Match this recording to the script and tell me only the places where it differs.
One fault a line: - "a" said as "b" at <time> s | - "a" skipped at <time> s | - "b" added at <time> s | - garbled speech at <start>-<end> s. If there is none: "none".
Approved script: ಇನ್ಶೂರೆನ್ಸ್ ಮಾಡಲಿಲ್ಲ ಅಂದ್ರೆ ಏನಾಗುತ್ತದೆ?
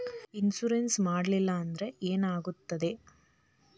none